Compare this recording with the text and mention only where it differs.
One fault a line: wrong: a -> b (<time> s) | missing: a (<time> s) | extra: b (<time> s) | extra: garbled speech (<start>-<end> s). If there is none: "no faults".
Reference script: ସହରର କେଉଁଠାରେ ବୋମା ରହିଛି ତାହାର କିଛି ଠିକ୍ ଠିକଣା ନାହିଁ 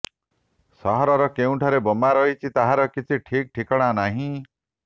no faults